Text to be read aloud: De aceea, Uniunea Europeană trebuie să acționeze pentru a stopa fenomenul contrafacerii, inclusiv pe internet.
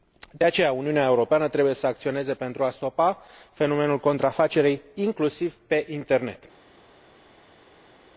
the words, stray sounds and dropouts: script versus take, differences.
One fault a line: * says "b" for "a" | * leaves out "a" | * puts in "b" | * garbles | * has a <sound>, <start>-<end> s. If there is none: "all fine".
all fine